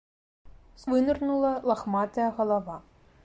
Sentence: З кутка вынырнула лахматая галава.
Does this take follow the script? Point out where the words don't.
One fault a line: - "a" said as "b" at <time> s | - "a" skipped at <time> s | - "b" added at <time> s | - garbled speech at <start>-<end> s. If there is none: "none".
- "кутка" skipped at 0.9 s